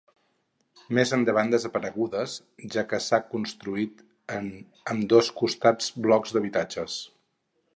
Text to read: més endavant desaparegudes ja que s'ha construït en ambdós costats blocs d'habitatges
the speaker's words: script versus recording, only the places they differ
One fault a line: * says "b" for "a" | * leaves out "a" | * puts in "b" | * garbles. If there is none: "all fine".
all fine